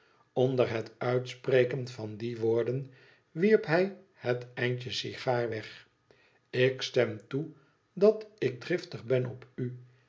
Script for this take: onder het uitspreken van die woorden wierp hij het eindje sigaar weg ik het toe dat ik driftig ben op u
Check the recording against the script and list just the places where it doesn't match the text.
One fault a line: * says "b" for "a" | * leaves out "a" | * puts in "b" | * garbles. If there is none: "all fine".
* says "stem" for "het"